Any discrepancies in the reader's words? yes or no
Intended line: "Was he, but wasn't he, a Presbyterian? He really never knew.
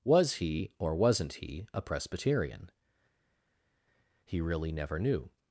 yes